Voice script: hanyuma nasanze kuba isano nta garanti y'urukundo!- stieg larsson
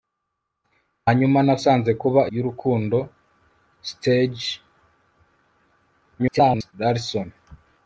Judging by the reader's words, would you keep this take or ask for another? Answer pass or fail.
fail